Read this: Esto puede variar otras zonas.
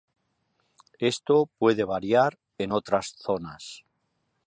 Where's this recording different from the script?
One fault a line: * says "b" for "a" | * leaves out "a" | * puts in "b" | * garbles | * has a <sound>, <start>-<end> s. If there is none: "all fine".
* puts in "en"